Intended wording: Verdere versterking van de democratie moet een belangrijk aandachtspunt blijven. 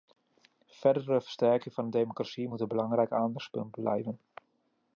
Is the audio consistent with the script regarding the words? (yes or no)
yes